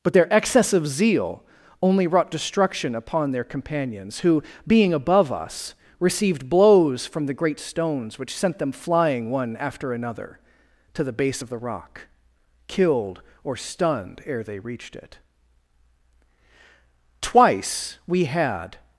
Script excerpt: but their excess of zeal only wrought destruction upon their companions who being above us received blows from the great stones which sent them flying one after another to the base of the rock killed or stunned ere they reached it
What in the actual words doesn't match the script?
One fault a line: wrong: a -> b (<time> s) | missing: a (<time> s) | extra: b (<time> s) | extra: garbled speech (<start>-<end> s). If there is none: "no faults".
extra: twice we had (17.2 s)